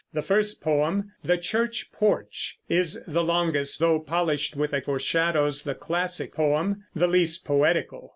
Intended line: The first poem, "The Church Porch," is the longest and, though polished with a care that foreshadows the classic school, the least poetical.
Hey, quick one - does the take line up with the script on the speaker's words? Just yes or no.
no